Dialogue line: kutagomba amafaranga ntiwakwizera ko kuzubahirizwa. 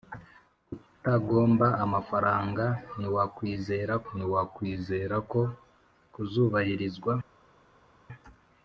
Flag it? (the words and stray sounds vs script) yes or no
yes